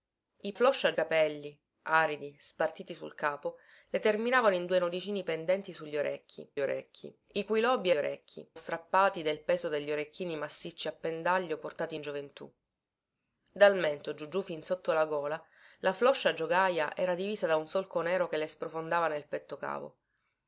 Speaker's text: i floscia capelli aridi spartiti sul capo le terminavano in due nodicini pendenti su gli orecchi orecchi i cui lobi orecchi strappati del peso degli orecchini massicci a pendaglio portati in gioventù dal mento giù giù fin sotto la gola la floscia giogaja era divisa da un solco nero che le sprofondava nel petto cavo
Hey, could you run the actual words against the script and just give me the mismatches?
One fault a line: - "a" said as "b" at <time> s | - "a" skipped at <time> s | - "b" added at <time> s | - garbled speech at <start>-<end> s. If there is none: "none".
none